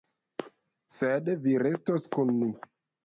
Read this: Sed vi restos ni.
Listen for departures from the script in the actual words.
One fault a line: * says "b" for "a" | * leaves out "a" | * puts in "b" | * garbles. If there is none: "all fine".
* puts in "kun"